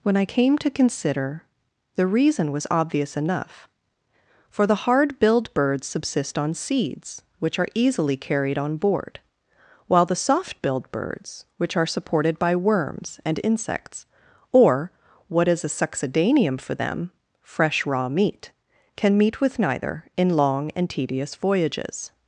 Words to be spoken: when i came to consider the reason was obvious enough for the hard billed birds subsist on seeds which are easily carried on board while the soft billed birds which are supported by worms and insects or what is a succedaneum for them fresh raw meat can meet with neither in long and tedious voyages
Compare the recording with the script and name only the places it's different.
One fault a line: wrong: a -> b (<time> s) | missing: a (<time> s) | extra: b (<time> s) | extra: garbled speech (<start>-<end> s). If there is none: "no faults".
no faults